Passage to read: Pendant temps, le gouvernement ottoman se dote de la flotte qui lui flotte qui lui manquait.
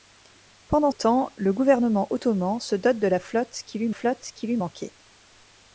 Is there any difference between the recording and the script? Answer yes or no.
no